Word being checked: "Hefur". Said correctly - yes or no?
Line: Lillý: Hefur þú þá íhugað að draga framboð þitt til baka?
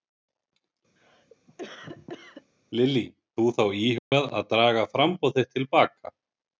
no